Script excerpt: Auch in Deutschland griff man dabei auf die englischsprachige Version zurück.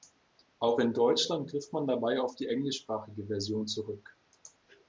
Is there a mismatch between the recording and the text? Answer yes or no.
no